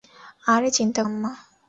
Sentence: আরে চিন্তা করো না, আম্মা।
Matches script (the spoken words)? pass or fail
fail